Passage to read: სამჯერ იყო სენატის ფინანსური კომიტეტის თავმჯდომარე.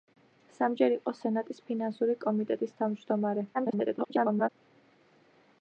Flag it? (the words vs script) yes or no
yes